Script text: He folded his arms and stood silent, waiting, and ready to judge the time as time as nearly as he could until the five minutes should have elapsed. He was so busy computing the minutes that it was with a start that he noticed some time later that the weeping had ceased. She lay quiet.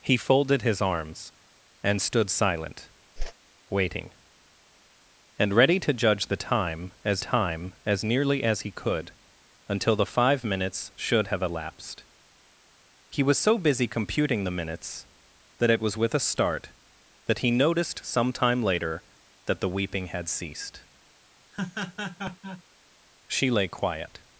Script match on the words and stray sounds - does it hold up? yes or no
no